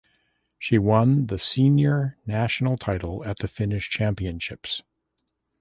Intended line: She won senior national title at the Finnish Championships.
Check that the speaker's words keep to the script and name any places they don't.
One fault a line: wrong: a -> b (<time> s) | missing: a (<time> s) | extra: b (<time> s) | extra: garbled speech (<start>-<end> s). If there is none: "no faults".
extra: the (1.3 s)